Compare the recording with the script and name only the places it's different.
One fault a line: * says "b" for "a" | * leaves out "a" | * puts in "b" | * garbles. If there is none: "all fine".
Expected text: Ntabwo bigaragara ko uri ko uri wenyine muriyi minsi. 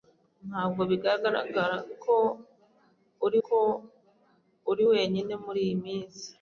all fine